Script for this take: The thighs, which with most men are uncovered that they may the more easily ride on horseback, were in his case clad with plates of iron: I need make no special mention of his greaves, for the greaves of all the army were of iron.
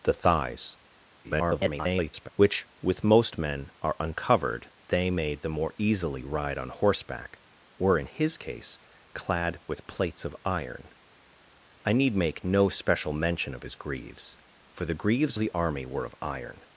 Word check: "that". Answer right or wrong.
wrong